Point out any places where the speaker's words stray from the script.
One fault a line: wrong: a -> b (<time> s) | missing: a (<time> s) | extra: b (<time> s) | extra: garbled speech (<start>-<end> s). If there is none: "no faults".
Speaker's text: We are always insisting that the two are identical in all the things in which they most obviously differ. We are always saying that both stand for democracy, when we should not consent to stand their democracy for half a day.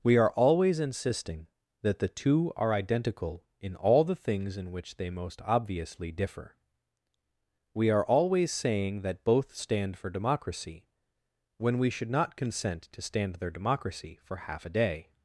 no faults